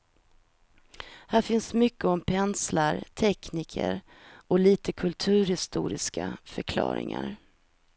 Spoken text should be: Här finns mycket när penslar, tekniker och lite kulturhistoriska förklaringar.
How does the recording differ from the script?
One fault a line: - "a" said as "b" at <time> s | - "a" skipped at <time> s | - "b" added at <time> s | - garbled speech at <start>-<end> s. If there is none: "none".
- "när" said as "om" at 2.0 s